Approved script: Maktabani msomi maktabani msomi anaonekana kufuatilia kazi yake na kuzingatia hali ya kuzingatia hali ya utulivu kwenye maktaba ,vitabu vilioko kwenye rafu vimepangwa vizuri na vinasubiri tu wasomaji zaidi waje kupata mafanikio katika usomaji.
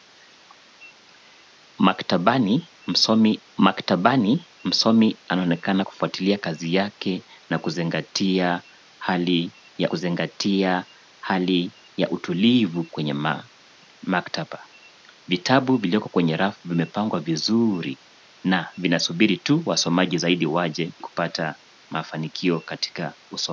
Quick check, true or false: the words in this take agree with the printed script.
true